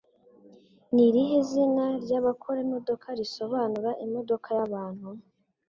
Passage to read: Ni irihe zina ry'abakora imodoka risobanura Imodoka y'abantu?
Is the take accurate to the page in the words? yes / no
yes